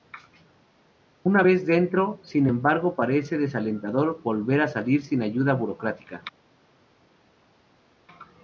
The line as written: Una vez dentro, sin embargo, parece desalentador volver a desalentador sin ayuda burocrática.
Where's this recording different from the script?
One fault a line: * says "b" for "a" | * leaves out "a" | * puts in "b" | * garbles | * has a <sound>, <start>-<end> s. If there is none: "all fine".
* says "salir" for "desalentador"